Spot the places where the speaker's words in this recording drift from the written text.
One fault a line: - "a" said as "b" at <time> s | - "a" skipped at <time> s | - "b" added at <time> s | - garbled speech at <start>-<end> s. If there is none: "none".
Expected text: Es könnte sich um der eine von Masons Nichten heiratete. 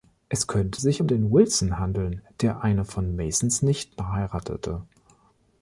- "den Wilson handeln" added at 1.1 s